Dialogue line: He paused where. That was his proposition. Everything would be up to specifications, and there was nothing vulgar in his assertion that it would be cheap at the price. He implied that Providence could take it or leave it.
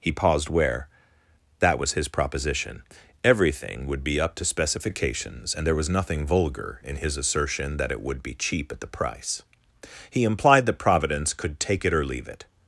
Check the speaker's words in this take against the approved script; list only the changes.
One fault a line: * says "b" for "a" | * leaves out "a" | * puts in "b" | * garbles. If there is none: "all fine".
all fine